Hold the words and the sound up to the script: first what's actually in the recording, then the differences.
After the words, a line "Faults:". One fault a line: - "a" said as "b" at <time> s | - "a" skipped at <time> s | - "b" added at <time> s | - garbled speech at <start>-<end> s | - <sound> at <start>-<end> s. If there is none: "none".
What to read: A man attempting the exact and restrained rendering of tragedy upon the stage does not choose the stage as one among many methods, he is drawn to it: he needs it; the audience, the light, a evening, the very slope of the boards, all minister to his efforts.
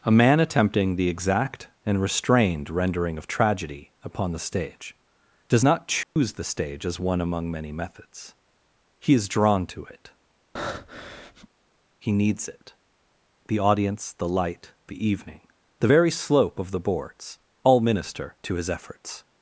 A man attempting the exact and restrained rendering of tragedy upon the stage does not choose the stage as one among many methods, he is drawn to it: he needs it; the audience, the light, the evening, the very slope of the boards, all minister to his efforts.
Faults:
- dropout at 6.0-6.2 s
- breath at 10.6-11.5 s
- "a" said as "the" at 14.9 s